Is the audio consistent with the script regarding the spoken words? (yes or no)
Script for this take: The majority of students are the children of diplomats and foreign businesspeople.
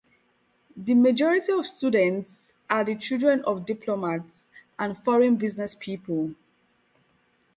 yes